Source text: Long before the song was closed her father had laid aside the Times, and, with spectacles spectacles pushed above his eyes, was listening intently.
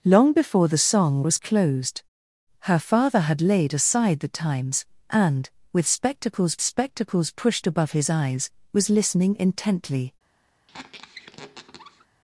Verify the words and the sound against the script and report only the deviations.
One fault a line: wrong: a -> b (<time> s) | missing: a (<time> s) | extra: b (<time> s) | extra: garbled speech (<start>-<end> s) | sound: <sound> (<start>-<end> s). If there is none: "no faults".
sound: squeak (10.7-12.1 s)